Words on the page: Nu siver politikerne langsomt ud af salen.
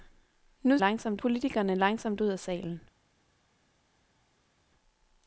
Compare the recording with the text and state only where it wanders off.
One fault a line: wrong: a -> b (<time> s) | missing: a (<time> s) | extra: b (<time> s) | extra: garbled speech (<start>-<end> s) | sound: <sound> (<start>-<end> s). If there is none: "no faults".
wrong: siver -> langsomt (0.8 s)